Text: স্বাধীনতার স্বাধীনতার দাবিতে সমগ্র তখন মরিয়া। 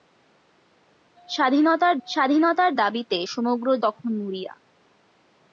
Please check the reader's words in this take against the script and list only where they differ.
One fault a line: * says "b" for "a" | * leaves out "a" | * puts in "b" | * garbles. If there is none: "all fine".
all fine